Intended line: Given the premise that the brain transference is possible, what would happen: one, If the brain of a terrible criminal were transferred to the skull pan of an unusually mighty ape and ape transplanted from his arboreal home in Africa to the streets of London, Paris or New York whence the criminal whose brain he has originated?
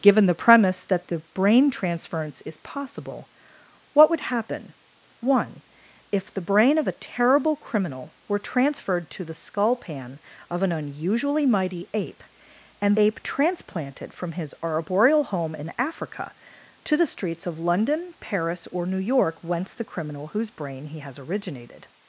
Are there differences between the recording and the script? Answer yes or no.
no